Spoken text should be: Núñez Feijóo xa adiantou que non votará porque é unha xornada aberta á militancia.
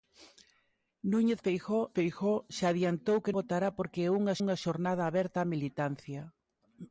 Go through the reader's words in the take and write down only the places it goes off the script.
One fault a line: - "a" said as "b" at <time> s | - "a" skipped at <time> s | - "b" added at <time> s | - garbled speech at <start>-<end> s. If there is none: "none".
- "Feijóo" added at 2.0 s
- "non" skipped at 3.4 s
- "unha" added at 4.4 s